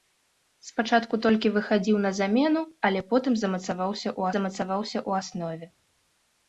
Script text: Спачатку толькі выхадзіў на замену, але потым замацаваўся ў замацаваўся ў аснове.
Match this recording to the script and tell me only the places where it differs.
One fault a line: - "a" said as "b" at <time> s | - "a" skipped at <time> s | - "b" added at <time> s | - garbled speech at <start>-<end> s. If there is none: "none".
none